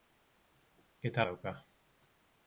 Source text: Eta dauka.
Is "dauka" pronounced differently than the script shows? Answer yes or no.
no